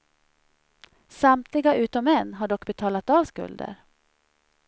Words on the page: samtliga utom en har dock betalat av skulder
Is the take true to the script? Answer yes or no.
yes